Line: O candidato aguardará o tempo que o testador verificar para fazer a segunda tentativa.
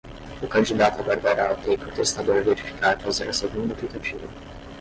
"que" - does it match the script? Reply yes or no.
no